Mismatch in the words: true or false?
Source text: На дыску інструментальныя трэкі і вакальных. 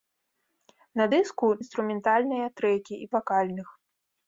false